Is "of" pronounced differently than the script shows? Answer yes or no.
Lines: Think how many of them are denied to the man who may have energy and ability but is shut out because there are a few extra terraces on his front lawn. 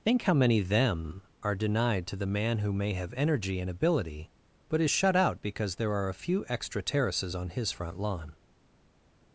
yes